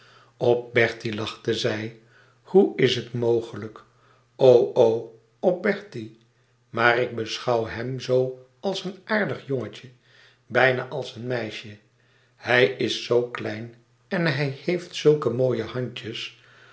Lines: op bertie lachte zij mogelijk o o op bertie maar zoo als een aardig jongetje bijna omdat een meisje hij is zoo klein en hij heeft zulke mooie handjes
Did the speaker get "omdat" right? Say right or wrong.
wrong